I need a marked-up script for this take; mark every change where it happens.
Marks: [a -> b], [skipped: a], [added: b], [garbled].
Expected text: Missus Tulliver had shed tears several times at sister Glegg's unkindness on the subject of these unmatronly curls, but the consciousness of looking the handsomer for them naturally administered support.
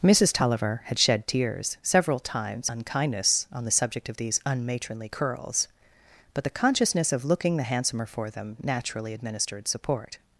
Missus Tulliver had shed tears several times [skipped: at sister Glegg's] unkindness on the subject of these unmatronly curls, but the consciousness of looking the handsomer for them naturally administered support.